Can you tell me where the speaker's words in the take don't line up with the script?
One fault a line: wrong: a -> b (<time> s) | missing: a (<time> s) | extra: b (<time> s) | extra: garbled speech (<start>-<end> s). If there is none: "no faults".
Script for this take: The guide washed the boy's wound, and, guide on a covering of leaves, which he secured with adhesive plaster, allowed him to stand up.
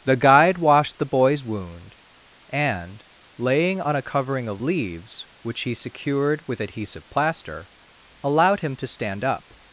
wrong: guide -> laying (3.4 s)